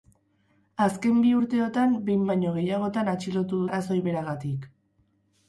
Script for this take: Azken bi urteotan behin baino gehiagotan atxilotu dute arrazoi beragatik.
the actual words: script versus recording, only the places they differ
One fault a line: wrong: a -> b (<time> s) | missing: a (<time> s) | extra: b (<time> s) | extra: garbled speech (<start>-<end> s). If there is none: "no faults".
missing: dute (3.6 s)